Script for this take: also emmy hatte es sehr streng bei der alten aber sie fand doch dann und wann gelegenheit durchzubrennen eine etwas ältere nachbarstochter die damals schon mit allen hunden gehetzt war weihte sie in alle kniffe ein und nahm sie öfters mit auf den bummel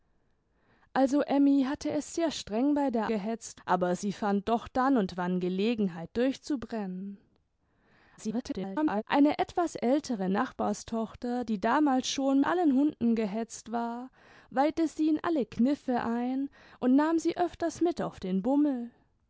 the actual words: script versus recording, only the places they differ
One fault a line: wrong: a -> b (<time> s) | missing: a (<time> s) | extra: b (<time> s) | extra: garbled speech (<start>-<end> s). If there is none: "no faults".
wrong: alten -> gehetzt (3.1 s)
extra: garbled speech (8.2-9.0 s)
missing: mit (12.4 s)